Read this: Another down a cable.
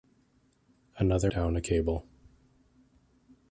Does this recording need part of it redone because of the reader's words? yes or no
no